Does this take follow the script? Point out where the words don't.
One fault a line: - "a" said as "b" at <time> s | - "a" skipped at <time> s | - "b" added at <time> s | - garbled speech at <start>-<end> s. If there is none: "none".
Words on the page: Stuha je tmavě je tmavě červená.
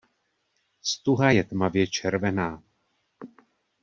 - "je tmavě" skipped at 1.9 s